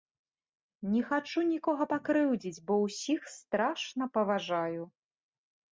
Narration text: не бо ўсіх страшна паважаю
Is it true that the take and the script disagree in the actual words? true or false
true